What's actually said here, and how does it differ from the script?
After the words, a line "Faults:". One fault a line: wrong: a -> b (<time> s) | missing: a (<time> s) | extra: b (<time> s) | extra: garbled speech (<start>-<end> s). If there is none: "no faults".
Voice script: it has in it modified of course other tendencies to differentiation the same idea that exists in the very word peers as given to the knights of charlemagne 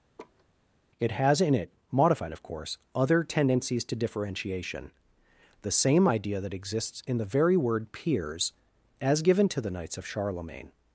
it has in it modified of course other tendencies to differentiation the same idea that exists in the very word peers as given to the knights of charlemagne
Faults:
no faults